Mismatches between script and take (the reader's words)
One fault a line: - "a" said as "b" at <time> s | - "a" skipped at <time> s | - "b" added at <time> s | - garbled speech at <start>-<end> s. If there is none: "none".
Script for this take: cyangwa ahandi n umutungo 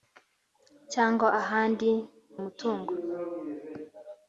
none